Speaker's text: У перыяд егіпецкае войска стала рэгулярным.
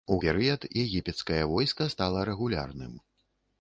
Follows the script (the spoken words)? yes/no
yes